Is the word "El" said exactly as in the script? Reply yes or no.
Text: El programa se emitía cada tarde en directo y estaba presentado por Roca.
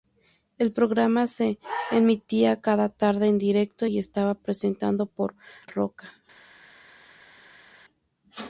yes